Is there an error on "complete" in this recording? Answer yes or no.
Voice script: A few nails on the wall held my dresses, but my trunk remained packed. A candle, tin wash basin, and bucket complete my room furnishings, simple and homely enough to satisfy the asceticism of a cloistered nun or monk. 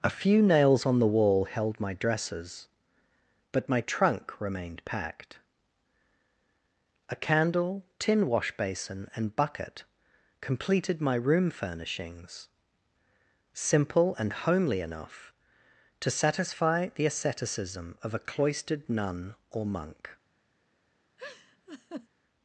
yes